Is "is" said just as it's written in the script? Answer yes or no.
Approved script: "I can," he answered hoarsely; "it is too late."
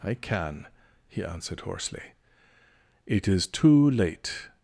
yes